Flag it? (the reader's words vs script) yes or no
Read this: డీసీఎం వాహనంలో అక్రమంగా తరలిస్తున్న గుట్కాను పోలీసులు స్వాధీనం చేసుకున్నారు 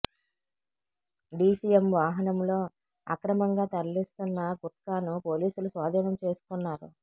no